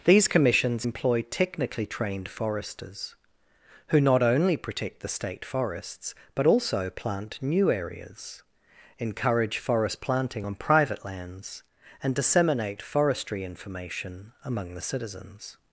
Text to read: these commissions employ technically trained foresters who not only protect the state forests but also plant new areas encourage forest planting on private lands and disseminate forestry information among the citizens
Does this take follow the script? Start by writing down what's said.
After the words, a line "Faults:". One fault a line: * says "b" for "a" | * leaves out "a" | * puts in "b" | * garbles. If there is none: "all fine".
these commissions employ technically trained foresters who not only protect the state forests but also plant new areas encourage forest planting on private lands and disseminate forestry information among the citizens
Faults:
all fine